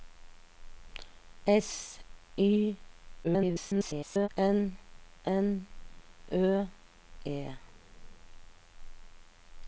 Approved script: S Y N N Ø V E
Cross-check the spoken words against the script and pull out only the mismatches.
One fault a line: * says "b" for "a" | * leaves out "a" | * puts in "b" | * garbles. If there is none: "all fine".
* garbles
* leaves out "V"